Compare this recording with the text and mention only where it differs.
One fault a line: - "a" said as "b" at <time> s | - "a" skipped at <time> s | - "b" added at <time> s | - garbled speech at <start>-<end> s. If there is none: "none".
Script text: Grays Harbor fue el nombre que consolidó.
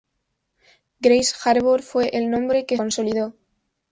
none